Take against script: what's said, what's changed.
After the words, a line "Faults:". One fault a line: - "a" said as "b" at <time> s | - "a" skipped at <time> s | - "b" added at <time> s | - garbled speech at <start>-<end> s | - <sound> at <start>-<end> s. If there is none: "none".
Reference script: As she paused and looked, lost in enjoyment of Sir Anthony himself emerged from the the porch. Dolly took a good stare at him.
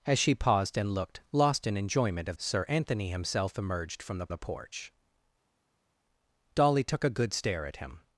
As she paused and looked, lost in enjoyment of Sir Anthony himself emerged from the the porch. Dolly took a good stare at him.
Faults:
none